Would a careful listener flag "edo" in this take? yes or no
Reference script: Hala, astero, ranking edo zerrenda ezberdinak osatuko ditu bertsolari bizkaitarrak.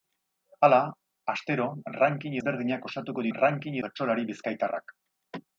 yes